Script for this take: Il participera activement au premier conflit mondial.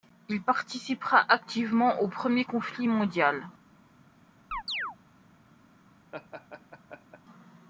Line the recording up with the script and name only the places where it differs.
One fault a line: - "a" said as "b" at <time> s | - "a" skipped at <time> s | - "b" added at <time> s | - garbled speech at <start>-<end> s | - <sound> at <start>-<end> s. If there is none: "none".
- chirp at 4.5-5.0 s
- laugh at 6.1-7.2 s